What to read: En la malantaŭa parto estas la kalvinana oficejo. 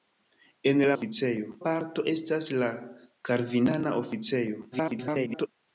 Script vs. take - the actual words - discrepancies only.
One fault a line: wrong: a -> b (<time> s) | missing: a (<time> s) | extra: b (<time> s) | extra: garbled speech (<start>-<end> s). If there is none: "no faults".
wrong: malantaŭa -> oficejo (0.9 s)
extra: garbled speech (4.7-5.5 s)